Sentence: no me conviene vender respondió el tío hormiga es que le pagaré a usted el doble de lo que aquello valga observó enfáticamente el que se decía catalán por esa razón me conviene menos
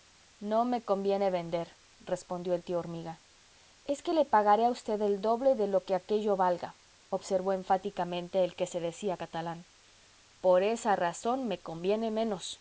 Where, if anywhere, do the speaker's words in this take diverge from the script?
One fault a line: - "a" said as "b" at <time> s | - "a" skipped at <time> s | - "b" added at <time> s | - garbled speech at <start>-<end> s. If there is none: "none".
none